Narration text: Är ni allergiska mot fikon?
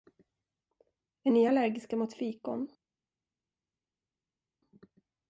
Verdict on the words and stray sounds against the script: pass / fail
pass